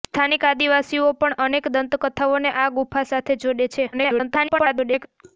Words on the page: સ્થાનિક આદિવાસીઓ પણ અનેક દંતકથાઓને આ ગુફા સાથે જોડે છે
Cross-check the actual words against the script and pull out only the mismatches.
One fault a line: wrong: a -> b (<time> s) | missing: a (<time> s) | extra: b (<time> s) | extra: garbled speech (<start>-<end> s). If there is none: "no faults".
extra: garbled speech (3.9-5.1 s)